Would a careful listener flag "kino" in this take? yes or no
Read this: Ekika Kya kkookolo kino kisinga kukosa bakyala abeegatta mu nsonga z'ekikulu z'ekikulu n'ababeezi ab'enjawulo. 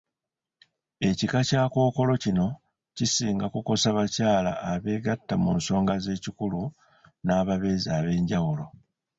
no